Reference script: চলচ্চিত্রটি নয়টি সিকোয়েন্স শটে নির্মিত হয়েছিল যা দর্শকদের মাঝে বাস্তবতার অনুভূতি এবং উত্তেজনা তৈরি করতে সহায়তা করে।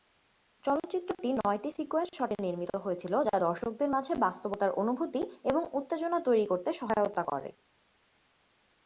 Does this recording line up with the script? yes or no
yes